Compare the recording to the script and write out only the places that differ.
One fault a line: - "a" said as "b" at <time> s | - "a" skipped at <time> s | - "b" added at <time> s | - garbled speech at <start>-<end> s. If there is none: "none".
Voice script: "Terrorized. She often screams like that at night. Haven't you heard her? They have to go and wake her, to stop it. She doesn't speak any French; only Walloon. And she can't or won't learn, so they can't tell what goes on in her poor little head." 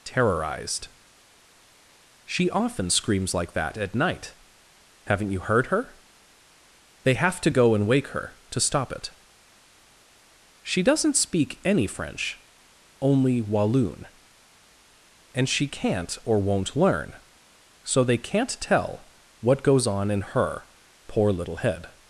none